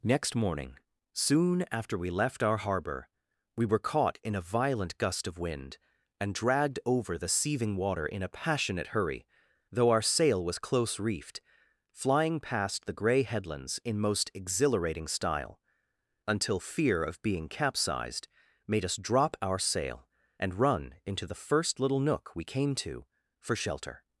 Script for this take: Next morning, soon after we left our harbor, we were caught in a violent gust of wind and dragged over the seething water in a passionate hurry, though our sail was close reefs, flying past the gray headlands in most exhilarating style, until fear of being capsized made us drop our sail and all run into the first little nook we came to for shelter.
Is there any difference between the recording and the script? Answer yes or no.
yes